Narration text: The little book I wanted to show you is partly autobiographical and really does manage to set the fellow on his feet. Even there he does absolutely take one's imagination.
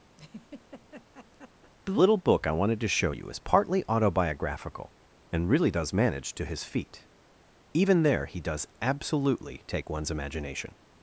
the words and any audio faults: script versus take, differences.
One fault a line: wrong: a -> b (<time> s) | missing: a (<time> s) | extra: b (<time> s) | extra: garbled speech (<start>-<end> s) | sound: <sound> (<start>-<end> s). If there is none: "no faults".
sound: laugh (0.2-1.7 s)
missing: set the fellow on (6.4 s)